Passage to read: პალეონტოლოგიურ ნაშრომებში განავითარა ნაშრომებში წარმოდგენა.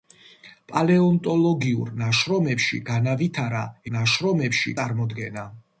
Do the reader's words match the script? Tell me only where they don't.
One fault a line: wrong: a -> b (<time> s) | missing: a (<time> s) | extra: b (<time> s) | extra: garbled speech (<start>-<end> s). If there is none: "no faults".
no faults